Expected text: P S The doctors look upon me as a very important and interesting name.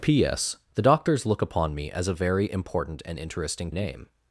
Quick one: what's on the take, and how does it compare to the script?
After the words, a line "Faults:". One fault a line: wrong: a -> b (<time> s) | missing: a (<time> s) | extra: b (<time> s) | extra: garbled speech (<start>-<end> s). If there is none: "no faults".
P S The doctors look upon me as a very important and interesting name.
Faults:
no faults